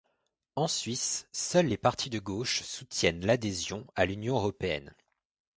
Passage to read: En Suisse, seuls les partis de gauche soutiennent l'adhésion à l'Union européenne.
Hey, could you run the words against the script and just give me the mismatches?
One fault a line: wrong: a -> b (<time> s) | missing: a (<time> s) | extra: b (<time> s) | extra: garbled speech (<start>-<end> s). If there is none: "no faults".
no faults